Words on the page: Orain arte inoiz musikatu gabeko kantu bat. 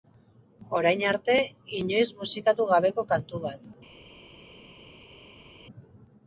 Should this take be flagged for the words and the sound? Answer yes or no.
no